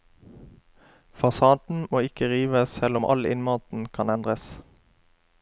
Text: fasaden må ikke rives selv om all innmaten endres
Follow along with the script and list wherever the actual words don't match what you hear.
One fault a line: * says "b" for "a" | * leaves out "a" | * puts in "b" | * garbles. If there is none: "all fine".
* puts in "kan"